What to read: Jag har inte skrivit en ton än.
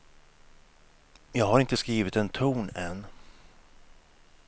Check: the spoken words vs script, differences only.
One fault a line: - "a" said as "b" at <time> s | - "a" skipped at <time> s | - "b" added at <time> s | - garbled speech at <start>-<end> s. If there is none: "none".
none